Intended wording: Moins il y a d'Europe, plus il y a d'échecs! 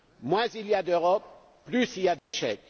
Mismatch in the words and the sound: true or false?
true